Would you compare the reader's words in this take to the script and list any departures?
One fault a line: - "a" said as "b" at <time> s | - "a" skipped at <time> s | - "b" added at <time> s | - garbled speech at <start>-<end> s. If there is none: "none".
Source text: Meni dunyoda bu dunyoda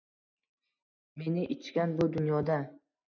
- "dunyoda" said as "ichgan" at 1.6 s